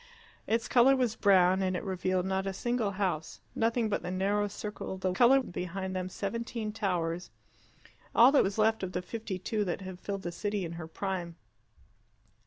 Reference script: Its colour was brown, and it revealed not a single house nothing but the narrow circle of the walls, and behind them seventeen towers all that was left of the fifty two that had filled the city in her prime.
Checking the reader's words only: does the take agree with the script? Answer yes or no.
no